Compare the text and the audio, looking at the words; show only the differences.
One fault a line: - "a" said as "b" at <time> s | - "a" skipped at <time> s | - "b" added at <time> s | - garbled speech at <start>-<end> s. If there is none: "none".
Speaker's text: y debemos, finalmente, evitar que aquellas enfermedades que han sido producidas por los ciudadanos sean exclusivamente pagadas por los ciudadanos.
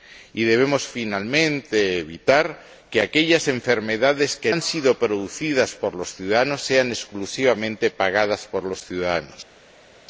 none